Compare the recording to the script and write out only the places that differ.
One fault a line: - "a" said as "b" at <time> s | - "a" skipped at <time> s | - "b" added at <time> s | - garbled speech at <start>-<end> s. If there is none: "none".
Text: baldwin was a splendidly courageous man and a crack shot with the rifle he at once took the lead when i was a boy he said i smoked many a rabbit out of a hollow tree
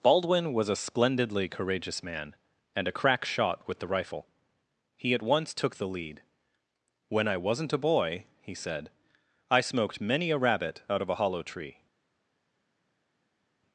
- "was" said as "wasn't" at 7.4 s